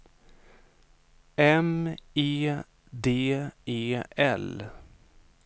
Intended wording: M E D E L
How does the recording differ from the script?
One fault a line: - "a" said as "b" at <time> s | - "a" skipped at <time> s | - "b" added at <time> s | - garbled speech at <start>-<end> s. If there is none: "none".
none